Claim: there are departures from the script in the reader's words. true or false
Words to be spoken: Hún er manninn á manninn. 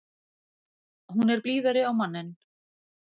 true